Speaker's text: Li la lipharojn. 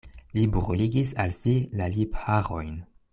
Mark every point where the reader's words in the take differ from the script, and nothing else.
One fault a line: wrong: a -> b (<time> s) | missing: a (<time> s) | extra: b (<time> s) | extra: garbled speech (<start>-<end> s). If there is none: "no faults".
extra: bruligis al si (0.6 s)